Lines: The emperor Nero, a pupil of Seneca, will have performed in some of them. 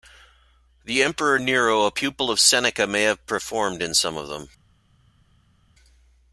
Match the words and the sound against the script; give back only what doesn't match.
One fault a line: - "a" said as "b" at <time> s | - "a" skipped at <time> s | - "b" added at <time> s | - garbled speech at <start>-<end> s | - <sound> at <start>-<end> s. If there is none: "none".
- "will" said as "may" at 2.9 s